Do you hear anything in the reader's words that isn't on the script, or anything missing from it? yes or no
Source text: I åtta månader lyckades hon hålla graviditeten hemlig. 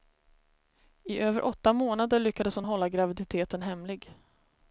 yes